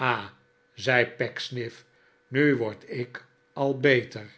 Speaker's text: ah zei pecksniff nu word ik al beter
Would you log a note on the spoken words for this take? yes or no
no